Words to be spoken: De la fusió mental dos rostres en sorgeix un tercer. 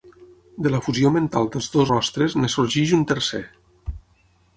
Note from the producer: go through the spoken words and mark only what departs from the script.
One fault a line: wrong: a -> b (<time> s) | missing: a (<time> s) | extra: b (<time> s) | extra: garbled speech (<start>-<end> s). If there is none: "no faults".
extra: dels (1.5 s)